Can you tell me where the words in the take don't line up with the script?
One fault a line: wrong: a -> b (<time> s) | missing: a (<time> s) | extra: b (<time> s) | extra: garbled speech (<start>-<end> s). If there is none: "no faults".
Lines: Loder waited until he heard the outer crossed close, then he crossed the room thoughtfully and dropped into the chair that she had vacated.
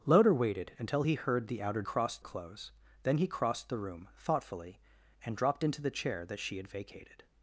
no faults